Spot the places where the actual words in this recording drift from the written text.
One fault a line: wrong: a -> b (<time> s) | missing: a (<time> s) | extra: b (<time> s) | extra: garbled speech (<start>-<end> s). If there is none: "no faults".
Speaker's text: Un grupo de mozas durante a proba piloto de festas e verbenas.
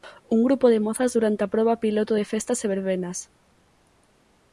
no faults